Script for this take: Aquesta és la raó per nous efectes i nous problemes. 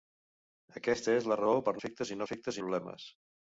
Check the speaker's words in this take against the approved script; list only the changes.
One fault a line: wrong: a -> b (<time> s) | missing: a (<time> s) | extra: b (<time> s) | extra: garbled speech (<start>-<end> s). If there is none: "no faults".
missing: nous (1.8 s)
wrong: nous -> efectes (2.3 s)